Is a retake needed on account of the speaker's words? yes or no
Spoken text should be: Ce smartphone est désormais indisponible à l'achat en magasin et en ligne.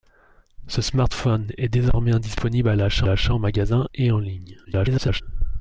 yes